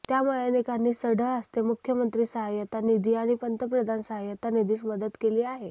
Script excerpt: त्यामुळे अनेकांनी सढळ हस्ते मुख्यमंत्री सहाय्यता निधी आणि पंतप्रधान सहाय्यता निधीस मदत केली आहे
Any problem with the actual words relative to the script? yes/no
no